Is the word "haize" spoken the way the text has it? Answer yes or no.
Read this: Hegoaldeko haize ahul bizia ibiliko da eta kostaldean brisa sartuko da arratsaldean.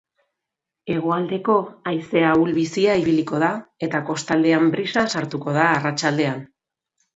yes